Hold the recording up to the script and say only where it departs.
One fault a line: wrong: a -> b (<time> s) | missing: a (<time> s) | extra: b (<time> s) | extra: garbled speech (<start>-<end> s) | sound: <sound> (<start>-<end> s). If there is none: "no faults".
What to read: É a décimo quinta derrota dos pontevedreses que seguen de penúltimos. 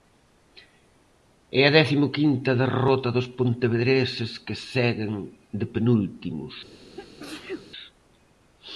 sound: sneeze (7.0-7.7 s)